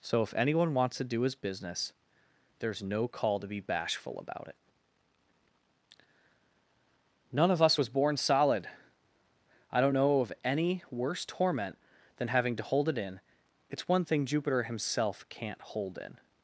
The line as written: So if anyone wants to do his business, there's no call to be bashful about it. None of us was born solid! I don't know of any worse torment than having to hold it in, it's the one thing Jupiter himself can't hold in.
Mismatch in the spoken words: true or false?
true